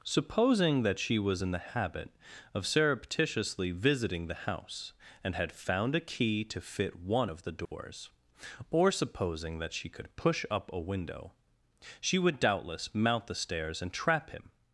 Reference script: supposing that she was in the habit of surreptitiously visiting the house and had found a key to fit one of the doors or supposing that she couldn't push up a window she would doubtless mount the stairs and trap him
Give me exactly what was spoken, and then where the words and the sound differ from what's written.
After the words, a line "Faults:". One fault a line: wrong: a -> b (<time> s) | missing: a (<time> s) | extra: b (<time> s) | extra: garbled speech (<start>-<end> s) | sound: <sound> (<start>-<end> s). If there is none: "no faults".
supposing that she was in the habit of surreptitiously visiting the house and had found a key to fit one of the doors or supposing that she could push up a window she would doubtless mount the stairs and trap him
Faults:
sound: dropout (7.7-7.7 s)
wrong: couldn't -> could (9.9 s)